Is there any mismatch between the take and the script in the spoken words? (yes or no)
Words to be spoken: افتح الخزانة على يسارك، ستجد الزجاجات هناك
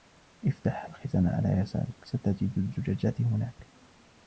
no